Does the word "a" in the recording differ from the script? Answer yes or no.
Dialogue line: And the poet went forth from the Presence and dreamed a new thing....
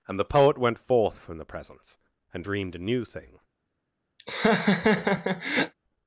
no